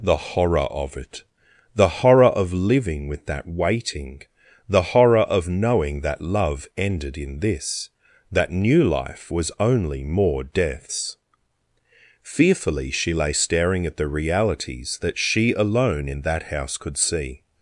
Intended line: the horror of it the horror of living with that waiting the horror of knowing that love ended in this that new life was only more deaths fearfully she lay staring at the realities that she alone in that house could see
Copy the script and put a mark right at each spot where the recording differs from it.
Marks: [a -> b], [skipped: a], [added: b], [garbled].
the horror of it the horror of living with that waiting the horror of knowing that love ended in this that new life was only more deaths fearfully she lay staring at the realities that she alone in that house could see